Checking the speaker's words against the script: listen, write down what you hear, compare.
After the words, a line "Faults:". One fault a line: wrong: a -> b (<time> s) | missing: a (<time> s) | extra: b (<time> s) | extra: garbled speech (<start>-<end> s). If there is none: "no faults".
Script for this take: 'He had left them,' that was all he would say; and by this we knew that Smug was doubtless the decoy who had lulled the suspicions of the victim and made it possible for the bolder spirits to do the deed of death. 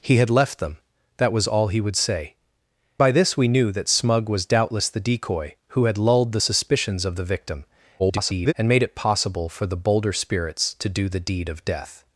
'He had left them,' that was all he would say; by this we knew that Smug was doubtless the decoy who had lulled the suspicions of the victim [garbled] and made it possible for the bolder spirits to do the deed of death.
Faults:
missing: and (2.3 s)
extra: garbled speech (8.0-8.5 s)